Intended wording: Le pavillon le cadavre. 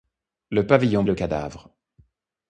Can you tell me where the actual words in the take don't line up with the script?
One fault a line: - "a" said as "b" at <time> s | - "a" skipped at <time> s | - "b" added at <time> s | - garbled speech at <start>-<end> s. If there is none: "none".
none